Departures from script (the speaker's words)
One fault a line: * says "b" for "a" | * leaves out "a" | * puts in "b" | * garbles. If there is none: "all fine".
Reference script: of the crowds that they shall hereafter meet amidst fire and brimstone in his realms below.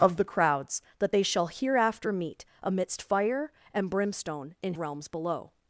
* leaves out "his"